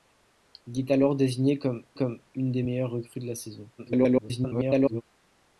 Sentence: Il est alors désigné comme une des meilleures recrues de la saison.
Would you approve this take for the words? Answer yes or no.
no